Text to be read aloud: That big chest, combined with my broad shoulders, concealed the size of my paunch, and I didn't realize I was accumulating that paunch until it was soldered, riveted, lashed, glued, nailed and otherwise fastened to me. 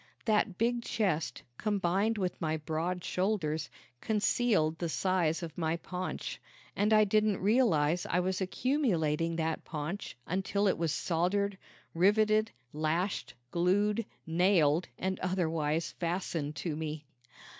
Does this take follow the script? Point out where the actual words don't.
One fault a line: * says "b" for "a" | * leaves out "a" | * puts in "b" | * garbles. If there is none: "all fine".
all fine